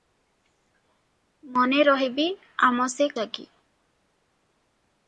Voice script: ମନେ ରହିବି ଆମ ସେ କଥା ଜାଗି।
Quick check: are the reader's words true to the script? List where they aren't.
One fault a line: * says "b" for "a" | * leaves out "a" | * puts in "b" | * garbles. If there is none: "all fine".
* leaves out "କଥା"